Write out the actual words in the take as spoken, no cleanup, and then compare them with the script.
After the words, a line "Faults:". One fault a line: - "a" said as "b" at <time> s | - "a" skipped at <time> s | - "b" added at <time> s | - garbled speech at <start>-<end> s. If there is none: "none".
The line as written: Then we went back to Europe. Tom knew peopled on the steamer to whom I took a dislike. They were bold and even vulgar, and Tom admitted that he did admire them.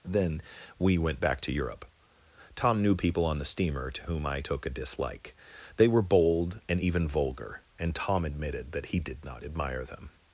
Then we went back to Europe. Tom knew people on the steamer to whom I took a dislike. They were bold and even vulgar, and Tom admitted that he did not admire them.
Faults:
- "peopled" said as "people" at 3.0 s
- "not" added at 9.2 s